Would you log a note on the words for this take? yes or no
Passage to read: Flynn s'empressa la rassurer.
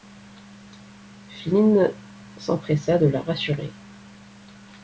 yes